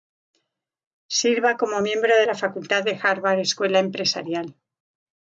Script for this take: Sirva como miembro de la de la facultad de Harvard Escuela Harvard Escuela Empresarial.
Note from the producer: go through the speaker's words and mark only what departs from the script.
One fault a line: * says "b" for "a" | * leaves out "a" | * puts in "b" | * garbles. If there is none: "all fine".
* leaves out "de la"
* leaves out "Harvard Escuela"